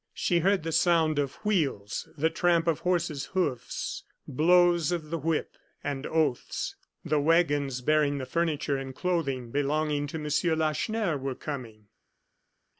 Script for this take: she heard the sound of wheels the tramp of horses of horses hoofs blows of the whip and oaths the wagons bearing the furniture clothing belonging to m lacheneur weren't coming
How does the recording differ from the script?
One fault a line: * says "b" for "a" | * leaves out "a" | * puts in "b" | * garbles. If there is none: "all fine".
* leaves out "of horses"
* puts in "and"
* says "were" for "weren't"